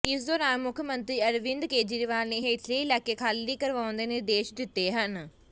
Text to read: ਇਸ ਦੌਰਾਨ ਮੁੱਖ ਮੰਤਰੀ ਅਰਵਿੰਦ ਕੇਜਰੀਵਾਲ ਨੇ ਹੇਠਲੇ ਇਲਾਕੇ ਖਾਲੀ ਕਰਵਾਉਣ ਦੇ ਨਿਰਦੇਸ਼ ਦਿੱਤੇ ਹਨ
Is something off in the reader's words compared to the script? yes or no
no